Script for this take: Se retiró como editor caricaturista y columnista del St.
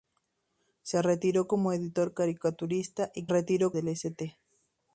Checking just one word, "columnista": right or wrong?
wrong